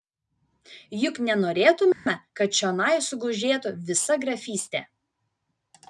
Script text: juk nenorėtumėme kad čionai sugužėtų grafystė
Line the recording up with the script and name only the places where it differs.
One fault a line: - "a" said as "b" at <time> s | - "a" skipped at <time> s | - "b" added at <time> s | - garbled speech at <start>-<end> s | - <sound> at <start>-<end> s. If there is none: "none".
- dropout at 1.9-2.1 s
- "visa" added at 3.9 s